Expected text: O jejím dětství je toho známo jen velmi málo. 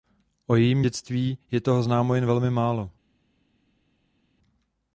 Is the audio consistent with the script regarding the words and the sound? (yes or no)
yes